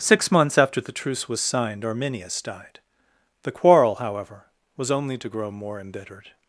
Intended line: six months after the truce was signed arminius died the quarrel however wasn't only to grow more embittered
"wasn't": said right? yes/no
no